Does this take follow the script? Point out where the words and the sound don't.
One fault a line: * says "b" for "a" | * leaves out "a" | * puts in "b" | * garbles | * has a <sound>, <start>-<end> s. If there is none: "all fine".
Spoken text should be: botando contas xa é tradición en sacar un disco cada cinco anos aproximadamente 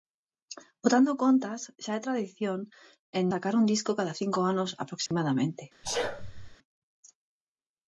* has a dropout, 5.1-5.1 s
* has a sneeze, 5.8-6.6 s